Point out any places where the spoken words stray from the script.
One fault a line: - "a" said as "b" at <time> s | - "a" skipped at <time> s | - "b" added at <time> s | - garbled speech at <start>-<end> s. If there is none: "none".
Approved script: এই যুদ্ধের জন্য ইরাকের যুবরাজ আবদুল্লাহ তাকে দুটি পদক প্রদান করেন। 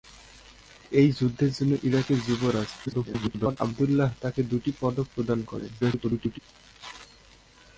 - garbled speech at 2.9-3.6 s
- garbled speech at 5.8-6.4 s